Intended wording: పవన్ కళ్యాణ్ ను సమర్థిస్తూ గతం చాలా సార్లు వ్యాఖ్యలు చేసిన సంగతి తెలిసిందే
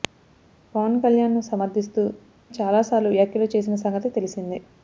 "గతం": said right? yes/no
no